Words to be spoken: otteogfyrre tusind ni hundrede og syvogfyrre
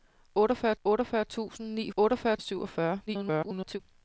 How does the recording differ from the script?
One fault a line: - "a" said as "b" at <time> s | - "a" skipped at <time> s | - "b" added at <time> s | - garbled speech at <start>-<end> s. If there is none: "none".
- "otteogfyrre" added at 0.8 s
- "hundrede" said as "otteogfyrre" at 2.0 s
- garbled speech at 3.1-3.8 s